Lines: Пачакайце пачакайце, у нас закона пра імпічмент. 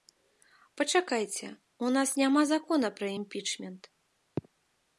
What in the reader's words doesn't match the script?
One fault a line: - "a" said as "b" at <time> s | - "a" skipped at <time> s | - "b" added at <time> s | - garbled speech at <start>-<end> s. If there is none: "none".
- "пачакайце" skipped at 1.5 s
- "няма" added at 2.2 s